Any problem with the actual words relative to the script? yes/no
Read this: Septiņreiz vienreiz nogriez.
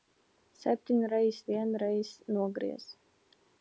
no